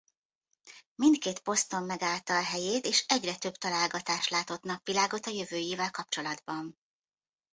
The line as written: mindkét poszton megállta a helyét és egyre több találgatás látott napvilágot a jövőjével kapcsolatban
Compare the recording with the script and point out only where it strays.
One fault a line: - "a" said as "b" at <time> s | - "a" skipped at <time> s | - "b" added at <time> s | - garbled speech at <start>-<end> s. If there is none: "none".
none